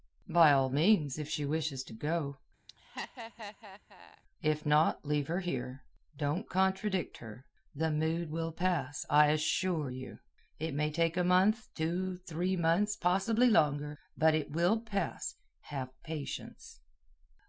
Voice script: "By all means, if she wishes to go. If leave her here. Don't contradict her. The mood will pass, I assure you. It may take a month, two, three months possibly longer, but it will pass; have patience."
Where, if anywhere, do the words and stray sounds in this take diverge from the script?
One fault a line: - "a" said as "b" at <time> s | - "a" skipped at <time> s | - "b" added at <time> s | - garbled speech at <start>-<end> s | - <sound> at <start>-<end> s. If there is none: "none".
- laugh at 2.7-4.2 s
- "not" added at 4.7 s